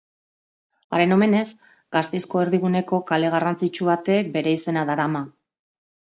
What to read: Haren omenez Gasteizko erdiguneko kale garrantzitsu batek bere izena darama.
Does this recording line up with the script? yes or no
yes